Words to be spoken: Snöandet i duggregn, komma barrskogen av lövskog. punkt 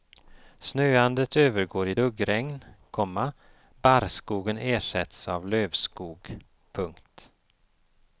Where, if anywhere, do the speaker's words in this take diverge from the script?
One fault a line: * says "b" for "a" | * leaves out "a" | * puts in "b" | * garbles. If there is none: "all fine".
* puts in "övergår"
* puts in "ersätts"